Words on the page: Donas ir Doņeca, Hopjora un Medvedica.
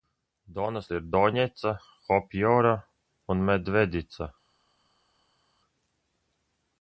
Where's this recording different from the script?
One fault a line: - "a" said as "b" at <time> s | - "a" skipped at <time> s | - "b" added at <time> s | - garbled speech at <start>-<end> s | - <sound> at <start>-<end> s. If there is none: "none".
none